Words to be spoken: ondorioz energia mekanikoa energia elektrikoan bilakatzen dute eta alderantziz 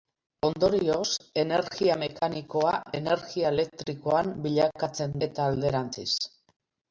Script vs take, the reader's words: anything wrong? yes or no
yes